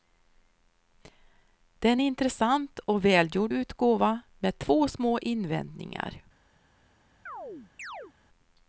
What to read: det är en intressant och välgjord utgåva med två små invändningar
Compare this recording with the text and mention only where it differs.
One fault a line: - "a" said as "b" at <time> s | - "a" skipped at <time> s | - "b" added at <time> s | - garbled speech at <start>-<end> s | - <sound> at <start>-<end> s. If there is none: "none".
- chirp at 7.3-8.1 s